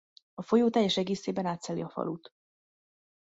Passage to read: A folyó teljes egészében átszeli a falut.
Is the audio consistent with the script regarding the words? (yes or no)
yes